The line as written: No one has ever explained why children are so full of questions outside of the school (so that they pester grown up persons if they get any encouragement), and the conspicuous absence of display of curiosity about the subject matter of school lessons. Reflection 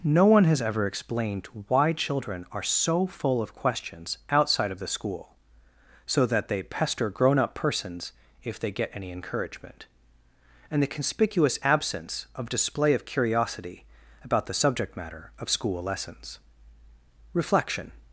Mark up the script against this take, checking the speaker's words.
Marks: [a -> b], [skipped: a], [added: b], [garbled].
No one has ever explained why children are so full of questions outside of the school (so that they pester grown up persons if they get any encouragement), and the conspicuous absence of display of curiosity about the subject matter of school lessons. Reflection